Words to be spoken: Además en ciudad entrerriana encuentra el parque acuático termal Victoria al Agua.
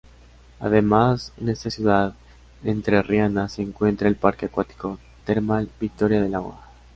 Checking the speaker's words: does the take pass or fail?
fail